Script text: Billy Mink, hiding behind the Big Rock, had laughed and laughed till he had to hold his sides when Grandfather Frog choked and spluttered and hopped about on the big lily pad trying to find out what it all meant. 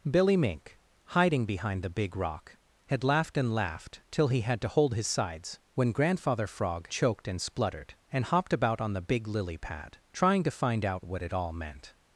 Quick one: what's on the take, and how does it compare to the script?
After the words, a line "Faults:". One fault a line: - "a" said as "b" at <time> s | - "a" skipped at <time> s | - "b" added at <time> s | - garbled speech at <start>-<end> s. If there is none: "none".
Billy Mink, hiding behind the Big Rock, had laughed and laughed till he had to hold his sides when Grandfather Frog choked and spluttered and hopped about on the big lily pad trying to find out what it all meant.
Faults:
none